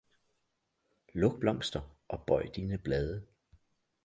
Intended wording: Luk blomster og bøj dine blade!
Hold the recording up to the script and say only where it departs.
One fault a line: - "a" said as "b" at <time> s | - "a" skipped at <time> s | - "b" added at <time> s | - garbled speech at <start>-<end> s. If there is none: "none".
none